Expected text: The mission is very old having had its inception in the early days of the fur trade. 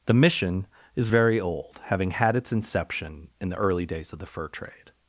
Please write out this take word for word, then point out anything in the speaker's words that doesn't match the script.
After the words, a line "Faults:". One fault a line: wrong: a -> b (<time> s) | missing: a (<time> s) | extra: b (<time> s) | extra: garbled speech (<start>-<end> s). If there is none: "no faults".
The mission is very old having had its inception in the early days of the fur trade.
Faults:
no faults